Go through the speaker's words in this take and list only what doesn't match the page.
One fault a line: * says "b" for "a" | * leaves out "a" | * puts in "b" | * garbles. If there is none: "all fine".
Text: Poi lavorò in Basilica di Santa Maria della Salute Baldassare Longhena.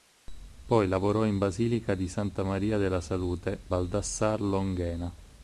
all fine